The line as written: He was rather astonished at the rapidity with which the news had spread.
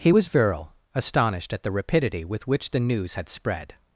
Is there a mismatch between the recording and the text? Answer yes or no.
yes